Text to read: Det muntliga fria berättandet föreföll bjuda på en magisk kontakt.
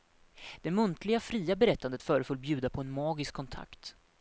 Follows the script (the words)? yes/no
yes